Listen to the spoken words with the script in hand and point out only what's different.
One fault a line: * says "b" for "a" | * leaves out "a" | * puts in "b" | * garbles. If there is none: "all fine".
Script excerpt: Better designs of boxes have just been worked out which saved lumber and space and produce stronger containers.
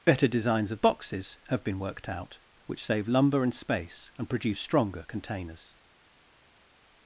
* leaves out "just"
* says "save" for "saved"